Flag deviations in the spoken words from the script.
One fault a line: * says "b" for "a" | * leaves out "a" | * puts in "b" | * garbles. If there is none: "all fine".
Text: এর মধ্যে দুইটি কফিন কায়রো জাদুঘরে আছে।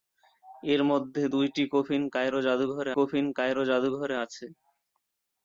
* puts in "কফিন কায়রো জাদুঘরে"